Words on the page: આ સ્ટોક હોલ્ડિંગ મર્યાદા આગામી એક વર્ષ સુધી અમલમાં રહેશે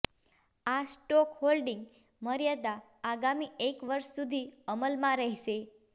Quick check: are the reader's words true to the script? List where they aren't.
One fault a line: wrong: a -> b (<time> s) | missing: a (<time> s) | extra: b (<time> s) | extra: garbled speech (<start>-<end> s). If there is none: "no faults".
no faults